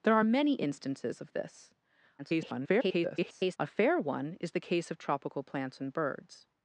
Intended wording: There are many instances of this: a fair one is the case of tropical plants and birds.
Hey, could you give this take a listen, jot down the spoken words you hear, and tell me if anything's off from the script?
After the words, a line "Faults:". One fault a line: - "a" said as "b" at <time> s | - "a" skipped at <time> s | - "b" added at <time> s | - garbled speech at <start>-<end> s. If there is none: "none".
There are many instances of this: [garbled] a fair one is the case of tropical plants and birds.
Faults:
- garbled speech at 2.2-3.6 s